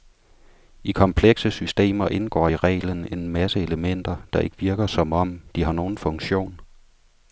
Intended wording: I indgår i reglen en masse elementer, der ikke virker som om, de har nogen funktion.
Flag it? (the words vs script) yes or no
yes